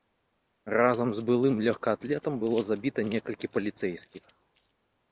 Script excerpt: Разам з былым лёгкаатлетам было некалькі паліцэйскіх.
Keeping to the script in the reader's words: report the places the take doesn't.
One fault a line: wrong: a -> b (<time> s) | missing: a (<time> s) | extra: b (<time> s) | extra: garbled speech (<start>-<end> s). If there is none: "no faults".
extra: забіта (2.7 s)